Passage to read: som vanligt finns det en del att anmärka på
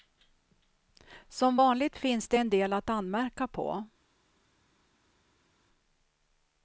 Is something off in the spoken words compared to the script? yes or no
no